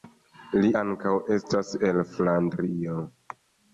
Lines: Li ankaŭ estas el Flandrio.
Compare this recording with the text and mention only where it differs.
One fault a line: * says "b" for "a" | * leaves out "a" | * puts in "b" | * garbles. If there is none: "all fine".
all fine